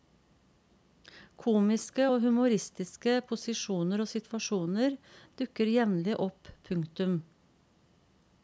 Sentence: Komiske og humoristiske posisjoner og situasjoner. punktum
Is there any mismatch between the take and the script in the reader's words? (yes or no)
yes